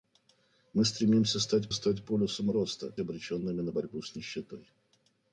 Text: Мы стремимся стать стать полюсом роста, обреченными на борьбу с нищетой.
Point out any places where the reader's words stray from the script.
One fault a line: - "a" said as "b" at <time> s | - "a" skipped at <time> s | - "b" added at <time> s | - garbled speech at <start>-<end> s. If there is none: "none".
none